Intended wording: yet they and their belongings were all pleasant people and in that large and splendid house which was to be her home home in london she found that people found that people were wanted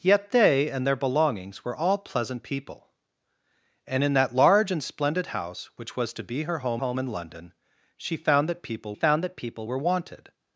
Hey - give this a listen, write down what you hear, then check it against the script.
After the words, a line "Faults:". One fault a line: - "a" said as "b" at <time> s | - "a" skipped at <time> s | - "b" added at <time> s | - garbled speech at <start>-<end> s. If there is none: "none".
yet they and their belongings were all pleasant people and in that large and splendid house which was to be her home home in london she found that people found that people were wanted
Faults:
none